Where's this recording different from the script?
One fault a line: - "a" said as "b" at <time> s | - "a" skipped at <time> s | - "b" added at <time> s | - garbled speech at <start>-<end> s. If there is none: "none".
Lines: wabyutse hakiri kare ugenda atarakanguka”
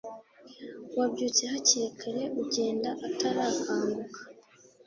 none